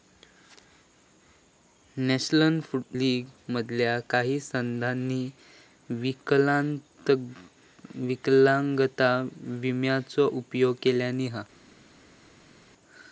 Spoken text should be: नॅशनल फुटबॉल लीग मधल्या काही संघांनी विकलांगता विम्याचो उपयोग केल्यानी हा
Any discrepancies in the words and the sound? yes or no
yes